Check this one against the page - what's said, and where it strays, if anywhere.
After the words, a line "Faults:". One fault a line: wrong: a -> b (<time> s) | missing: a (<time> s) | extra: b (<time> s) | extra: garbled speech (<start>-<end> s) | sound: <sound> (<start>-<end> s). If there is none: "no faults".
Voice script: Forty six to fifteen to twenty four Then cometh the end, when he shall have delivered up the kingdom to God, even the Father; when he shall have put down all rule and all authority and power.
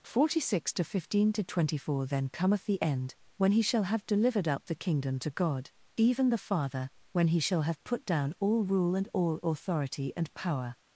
Forty six to fifteen to twenty four Then cometh the end, when he shall have delivered up the kingdom to God, even the Father; when he shall have put down all rule and all authority and power.
Faults:
no faults